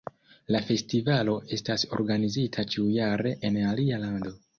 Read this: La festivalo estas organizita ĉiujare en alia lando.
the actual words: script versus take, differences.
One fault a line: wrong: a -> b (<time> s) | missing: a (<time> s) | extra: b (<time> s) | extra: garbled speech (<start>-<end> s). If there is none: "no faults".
no faults